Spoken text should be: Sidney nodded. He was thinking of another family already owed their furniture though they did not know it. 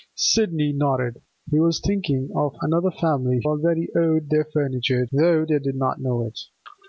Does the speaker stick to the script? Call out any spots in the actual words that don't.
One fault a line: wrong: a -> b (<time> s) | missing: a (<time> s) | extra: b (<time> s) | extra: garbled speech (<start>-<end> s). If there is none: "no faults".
no faults